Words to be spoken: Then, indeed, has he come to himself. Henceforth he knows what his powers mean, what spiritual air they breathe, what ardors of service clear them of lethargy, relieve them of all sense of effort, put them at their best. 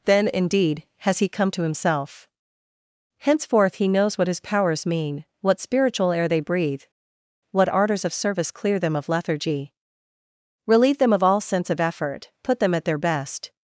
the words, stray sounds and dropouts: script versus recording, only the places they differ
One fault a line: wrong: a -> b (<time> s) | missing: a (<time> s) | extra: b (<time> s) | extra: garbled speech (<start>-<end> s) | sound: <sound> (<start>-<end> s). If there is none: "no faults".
no faults